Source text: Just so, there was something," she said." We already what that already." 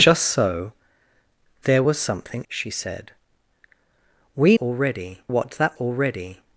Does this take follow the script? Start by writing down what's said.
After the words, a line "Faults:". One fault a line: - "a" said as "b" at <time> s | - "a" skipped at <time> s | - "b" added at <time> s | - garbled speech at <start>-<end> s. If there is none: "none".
Just so, there was something," she said." We already what that already."
Faults:
none